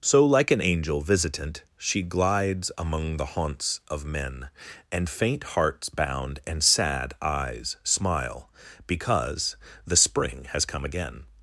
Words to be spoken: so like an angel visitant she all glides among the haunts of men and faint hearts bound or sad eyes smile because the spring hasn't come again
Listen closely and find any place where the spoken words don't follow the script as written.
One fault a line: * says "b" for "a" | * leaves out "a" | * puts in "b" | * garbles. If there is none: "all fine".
* leaves out "all"
* says "and" for "or"
* says "has" for "hasn't"